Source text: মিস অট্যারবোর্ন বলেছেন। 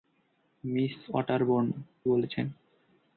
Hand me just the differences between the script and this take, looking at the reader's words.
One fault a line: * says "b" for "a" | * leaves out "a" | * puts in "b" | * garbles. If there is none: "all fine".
all fine